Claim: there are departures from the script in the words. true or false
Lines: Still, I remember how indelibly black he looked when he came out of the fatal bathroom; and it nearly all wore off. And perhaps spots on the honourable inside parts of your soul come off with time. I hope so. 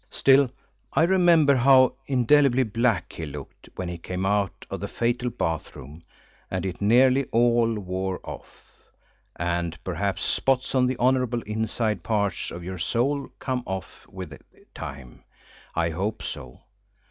false